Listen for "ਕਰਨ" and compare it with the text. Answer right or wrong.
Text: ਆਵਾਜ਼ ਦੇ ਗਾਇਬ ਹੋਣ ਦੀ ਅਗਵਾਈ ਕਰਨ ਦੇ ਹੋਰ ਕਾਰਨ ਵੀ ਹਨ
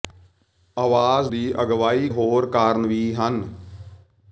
wrong